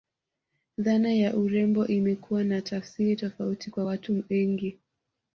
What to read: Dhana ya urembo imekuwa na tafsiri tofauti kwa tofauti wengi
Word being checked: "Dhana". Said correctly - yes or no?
yes